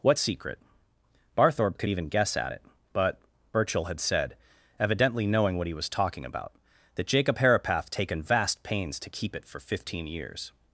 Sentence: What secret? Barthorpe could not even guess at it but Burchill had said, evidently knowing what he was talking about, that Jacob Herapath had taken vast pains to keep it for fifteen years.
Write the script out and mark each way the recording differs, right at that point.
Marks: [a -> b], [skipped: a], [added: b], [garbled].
What secret? Barthorpe could [skipped: not] even guess at it but Burchill had said, evidently knowing what he was talking about, that Jacob Herapath [skipped: had] taken vast pains to keep it for fifteen years.